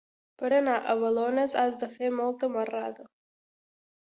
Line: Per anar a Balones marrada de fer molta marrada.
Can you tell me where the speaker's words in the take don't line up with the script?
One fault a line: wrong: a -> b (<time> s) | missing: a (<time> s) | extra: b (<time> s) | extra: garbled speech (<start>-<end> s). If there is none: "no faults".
wrong: marrada -> has (1.6 s)